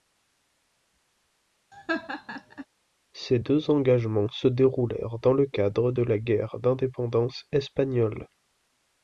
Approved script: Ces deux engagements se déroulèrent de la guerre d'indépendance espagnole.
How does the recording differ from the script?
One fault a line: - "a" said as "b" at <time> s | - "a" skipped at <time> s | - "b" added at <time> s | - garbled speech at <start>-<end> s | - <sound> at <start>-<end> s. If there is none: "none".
- laugh at 1.7-2.7 s
- "dans le cadre" added at 5.2 s